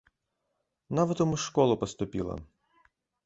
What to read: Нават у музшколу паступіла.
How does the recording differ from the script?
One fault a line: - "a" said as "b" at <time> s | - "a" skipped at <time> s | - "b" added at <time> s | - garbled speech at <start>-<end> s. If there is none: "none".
none